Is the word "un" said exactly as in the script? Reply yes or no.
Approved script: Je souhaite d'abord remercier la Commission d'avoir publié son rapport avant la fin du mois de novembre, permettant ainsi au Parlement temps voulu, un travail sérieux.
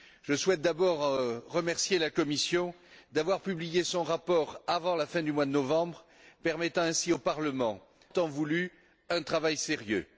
yes